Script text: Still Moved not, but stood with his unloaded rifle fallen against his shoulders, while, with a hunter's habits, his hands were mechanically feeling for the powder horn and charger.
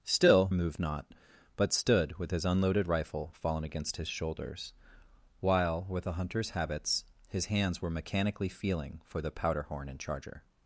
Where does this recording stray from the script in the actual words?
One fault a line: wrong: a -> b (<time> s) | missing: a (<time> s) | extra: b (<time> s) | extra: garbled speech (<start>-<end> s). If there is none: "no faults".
no faults